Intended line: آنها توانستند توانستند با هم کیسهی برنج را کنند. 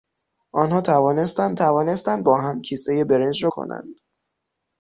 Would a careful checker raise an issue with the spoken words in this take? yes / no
no